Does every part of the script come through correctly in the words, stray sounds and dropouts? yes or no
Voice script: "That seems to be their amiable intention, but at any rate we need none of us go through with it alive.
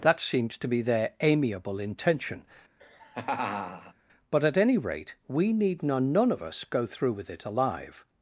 no